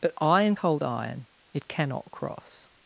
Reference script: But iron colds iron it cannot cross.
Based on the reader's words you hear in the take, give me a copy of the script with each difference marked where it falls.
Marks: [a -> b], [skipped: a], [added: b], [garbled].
But iron [colds -> cold] iron it cannot cross.